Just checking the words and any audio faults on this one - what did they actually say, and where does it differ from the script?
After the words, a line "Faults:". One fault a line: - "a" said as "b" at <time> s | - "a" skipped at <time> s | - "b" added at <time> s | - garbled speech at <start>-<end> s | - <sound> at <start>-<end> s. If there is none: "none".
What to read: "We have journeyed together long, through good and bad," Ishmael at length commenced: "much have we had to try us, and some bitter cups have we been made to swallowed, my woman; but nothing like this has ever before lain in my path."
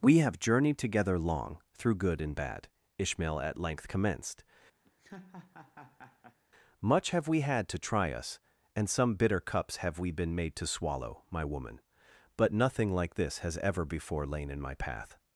"We have journeyed together long, through good and bad," Ishmael at length commenced: "much have we had to try us, and some bitter cups have we been made to swallow, my woman; but nothing like this has ever before lain in my path."
Faults:
- laugh at 4.8-6.4 s
- "swallowed" said as "swallow" at 10.7 s